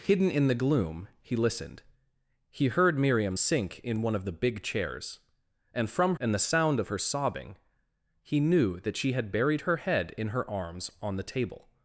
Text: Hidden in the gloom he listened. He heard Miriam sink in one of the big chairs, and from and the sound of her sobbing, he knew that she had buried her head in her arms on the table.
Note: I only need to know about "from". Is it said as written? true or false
true